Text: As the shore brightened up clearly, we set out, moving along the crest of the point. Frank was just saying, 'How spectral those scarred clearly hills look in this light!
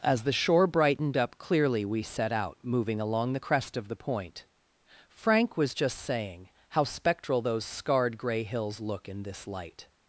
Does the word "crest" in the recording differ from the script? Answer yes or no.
no